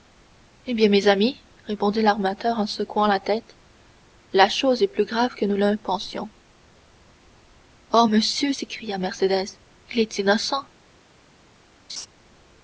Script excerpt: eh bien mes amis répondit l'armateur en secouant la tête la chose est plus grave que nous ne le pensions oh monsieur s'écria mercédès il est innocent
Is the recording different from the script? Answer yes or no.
no